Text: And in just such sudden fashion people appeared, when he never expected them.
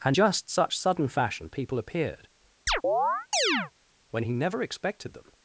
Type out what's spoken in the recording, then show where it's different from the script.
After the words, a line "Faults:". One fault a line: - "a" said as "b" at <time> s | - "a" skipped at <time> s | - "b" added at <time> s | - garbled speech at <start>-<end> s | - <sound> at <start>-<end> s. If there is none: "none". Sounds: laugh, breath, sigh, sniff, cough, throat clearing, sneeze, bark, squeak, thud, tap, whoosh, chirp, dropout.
And just such sudden fashion people appeared, when he never expected them.
Faults:
- "in" skipped at 0.2 s
- chirp at 2.7-3.7 s